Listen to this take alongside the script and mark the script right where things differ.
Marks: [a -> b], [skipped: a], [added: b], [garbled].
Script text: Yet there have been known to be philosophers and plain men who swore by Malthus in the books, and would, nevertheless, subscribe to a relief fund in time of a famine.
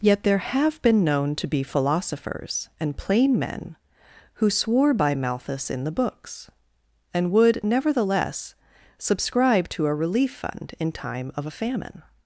Yet there have been known to be philosophers and plain men who swore by Malthus in the books, and would, nevertheless, subscribe to a relief fund in time of a famine.